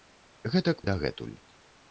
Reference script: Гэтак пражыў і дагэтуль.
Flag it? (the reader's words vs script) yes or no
yes